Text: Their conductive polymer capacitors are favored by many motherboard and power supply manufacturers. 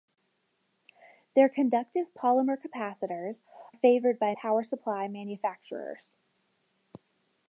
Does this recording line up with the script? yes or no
no